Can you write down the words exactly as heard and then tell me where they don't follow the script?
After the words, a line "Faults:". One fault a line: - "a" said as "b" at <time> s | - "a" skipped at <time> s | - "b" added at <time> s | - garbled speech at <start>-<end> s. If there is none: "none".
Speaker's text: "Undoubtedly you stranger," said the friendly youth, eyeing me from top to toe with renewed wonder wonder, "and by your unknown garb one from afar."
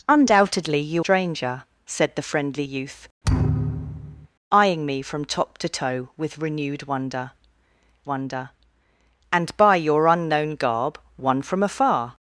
"Undoubtedly you stranger," said the friendly youth, eyeing me from top to toe with renewed wonder wonder, "and by your unknown garb one from afar."
Faults:
none